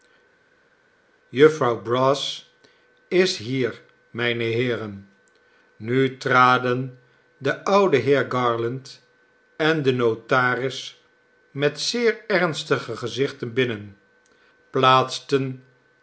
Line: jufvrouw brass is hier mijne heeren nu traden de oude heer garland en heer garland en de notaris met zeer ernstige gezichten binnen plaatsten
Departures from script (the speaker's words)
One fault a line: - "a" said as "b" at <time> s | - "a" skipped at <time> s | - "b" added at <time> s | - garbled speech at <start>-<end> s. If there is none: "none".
- "heer garland en" skipped at 9.8 s